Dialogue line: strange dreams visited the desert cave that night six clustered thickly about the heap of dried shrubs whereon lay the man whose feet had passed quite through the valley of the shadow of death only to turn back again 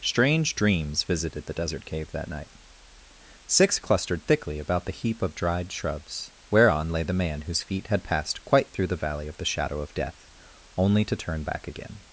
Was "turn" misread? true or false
false